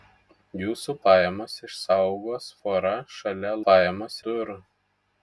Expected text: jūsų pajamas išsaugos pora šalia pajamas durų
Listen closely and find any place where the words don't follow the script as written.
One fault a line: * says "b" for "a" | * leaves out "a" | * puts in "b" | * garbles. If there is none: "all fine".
all fine